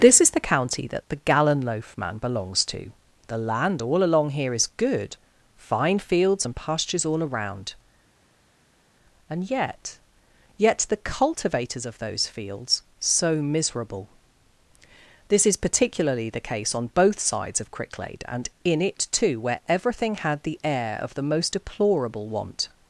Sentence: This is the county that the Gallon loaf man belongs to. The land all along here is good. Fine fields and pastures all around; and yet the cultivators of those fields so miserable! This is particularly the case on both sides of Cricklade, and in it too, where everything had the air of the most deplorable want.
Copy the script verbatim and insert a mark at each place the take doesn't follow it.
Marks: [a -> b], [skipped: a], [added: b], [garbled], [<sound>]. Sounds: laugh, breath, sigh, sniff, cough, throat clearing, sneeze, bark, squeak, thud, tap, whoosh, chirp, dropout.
This is the county that the Gallon loaf man belongs to. The land all along here is good. Fine fields and pastures all around; and yet [added: yet] the cultivators of those fields so miserable! This is particularly the case on both sides of Cricklade, and in it too, where everything had the air of the most deplorable want.